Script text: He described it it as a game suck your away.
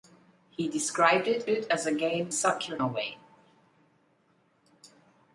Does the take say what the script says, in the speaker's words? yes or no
yes